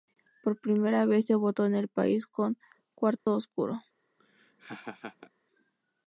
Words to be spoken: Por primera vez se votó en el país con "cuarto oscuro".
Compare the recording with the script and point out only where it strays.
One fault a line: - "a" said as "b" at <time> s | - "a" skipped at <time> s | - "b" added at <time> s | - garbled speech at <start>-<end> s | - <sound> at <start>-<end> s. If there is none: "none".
- dropout at 3.2-3.3 s
- laugh at 4.2-5.3 s